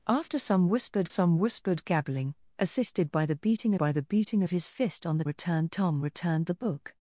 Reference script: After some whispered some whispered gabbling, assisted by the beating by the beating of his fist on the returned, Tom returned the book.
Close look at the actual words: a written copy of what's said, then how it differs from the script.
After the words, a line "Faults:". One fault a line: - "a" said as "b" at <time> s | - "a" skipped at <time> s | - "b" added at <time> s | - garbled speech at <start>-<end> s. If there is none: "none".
After some whispered some whispered gabbling, assisted by the beating by the beating of his fist on the returned, Tom returned the book.
Faults:
none